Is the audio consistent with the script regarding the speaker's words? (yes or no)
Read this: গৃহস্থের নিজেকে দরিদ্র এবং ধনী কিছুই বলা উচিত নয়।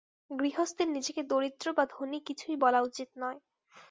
no